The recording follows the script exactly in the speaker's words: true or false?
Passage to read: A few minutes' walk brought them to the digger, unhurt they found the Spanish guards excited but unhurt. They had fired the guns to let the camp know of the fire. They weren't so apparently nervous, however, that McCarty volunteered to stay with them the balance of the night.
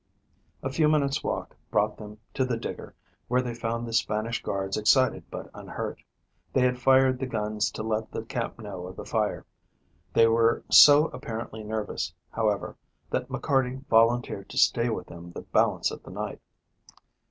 false